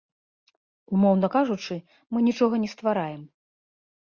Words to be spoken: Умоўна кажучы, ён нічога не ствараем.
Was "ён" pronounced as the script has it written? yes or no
no